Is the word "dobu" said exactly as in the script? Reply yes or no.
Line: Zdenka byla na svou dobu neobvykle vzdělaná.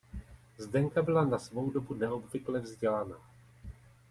yes